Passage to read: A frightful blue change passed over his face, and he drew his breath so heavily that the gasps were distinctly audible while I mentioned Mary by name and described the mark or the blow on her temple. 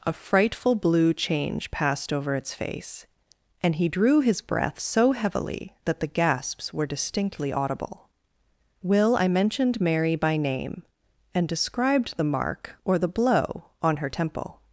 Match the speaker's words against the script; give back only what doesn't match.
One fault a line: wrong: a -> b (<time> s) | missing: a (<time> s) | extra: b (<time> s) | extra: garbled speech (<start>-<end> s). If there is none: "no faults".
wrong: his -> its (2.4 s)
wrong: while -> will (8.8 s)